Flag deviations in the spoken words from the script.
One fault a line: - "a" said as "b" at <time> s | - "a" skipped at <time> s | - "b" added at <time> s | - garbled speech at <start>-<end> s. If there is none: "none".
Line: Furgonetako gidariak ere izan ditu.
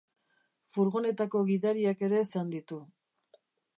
none